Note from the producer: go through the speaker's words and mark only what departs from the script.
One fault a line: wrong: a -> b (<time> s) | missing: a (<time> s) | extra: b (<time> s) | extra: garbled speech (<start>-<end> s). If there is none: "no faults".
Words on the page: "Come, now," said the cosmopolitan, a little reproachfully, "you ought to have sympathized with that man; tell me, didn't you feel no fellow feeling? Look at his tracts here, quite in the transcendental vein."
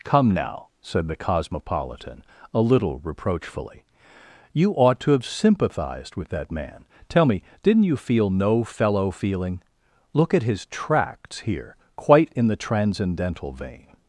no faults